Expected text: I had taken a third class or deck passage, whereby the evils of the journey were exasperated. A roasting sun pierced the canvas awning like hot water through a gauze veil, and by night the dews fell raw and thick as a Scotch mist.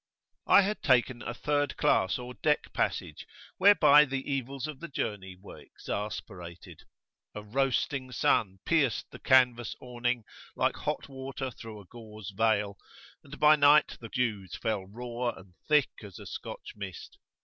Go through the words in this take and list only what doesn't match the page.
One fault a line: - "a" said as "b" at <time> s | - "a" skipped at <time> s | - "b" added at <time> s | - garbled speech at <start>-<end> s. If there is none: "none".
none